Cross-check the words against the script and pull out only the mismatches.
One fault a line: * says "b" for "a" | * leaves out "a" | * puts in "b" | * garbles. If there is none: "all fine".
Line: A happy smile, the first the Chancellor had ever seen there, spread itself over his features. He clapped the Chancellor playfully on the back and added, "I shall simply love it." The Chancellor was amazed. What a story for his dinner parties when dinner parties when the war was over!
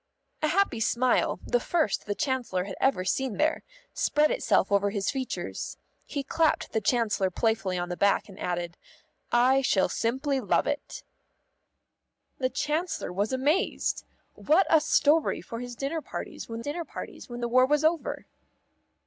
all fine